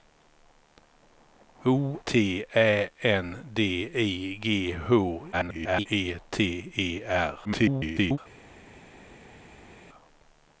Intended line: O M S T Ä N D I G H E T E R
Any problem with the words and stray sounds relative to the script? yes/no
yes